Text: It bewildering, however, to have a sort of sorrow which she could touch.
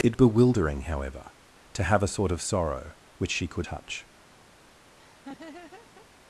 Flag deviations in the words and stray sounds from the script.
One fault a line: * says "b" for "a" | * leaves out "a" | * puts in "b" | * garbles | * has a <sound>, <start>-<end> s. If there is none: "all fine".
* has a laugh, 5.0-6.1 s